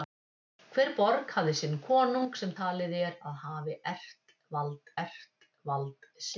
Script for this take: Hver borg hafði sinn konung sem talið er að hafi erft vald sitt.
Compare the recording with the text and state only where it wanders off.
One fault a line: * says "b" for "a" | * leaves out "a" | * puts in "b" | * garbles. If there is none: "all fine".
* puts in "erft vald"